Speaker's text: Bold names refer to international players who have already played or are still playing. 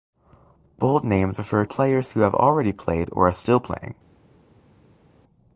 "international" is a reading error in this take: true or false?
true